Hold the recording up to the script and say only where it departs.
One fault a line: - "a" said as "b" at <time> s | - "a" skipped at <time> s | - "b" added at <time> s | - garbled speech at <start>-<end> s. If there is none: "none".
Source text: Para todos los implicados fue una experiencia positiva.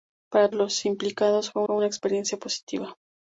- "todos" skipped at 0.5 s
- "fue" added at 1.6 s